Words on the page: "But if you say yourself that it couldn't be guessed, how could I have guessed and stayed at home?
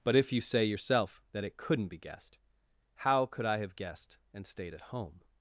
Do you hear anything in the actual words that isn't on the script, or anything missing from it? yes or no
no